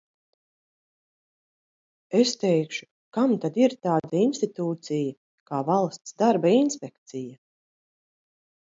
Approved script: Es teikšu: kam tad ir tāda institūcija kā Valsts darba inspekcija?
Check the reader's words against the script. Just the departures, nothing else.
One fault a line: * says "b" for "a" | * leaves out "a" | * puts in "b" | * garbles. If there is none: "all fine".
all fine